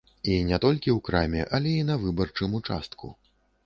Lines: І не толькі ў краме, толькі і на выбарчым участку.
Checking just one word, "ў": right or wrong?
right